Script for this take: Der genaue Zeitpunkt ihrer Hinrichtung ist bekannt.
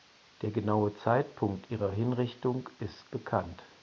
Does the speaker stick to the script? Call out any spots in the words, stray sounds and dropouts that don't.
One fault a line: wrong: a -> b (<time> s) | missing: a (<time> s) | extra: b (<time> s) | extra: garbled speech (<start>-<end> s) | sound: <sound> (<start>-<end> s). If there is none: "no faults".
no faults